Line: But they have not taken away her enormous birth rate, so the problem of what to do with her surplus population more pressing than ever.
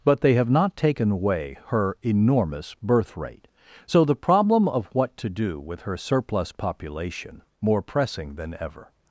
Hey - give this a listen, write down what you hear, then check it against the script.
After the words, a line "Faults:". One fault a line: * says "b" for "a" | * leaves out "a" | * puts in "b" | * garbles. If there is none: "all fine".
But they have not taken away her enormous birth rate, so the problem of what to do with her surplus population more pressing than ever.
Faults:
all fine